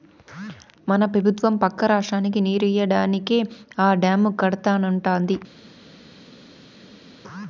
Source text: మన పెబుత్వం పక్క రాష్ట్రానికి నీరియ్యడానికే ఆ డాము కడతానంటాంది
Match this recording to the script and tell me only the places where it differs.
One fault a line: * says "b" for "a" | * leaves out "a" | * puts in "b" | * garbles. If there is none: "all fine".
all fine